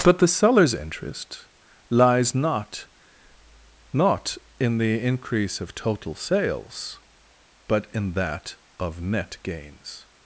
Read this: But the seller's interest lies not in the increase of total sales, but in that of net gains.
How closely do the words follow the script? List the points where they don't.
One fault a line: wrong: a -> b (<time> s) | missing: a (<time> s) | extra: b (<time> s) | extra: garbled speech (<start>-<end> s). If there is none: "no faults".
extra: not (3.9 s)